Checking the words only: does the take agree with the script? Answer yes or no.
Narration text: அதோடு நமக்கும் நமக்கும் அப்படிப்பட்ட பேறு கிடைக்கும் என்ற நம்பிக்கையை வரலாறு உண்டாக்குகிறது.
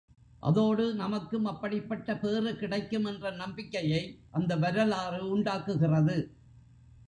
no